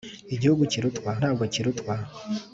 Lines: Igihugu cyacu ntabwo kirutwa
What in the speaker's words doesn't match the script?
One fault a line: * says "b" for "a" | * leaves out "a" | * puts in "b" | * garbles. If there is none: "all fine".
* says "kirutwa" for "cyacu"